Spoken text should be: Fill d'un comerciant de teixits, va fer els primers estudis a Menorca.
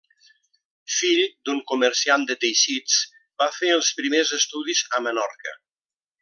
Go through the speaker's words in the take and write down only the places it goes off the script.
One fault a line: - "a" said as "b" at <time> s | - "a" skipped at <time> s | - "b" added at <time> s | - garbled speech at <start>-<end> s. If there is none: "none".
none